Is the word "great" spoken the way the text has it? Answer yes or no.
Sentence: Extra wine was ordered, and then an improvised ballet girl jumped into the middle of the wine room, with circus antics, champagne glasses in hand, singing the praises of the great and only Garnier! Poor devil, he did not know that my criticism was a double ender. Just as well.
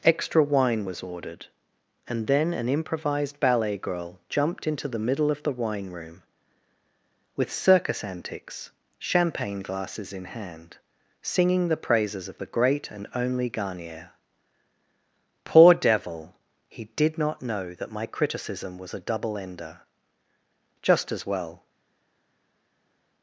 yes